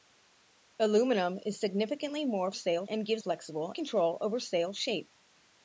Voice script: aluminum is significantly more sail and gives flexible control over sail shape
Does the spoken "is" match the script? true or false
true